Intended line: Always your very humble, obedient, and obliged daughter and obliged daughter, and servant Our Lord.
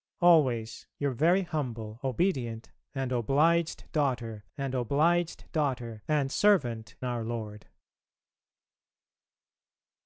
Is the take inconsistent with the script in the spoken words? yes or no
no